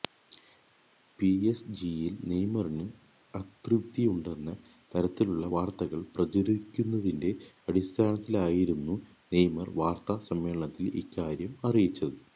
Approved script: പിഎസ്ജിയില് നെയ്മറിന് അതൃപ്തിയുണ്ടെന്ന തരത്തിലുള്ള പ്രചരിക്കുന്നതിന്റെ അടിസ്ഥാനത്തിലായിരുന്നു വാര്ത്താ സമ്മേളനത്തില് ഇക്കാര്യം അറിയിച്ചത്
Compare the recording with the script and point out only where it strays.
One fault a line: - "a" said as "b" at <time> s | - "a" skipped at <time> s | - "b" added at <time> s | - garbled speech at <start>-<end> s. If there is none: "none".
- "വാര്ത്തകള്" added at 5.5 s
- "നെയ്മര്" added at 9.3 s